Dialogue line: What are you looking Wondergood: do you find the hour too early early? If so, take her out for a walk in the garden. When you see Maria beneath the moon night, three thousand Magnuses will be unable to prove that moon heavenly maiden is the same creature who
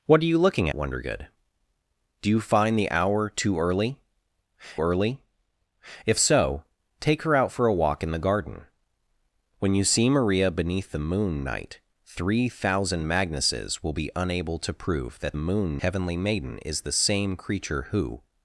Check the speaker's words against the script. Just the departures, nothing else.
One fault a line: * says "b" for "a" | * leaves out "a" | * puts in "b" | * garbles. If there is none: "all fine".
all fine